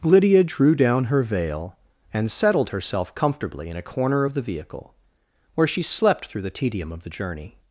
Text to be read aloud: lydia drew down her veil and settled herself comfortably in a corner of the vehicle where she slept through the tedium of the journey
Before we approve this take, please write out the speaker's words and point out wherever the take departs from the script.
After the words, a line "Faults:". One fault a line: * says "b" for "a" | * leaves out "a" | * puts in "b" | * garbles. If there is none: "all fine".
lydia drew down her veil and settled herself comfortably in a corner of the vehicle where she slept through the tedium of the journey
Faults:
all fine